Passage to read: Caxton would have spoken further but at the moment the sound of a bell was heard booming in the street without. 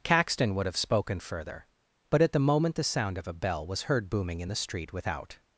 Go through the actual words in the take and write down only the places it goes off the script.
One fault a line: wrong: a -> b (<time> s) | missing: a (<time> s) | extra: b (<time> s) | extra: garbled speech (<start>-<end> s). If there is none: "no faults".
no faults